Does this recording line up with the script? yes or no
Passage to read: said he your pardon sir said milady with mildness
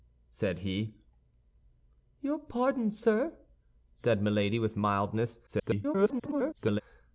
no